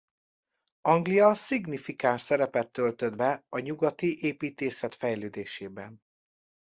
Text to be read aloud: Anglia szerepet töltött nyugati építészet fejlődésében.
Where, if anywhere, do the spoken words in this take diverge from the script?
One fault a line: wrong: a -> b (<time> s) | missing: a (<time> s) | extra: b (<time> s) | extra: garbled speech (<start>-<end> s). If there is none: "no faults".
extra: szignifikáns (1.4 s)
extra: be a (3.1 s)